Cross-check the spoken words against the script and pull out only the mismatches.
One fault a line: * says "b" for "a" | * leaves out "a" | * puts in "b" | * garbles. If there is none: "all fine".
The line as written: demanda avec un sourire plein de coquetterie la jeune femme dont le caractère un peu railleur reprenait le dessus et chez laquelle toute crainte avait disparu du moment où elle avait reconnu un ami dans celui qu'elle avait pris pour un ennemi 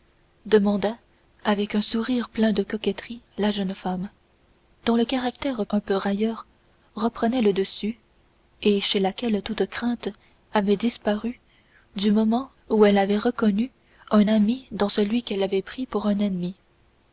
all fine